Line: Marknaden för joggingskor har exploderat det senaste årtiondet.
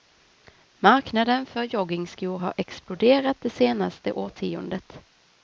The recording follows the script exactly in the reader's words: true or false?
true